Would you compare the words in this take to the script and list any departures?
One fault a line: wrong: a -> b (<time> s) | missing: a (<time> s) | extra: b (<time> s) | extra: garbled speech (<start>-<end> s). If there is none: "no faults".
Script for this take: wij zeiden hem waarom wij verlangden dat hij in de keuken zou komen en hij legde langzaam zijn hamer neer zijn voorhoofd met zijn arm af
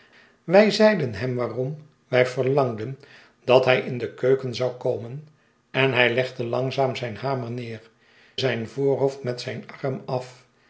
no faults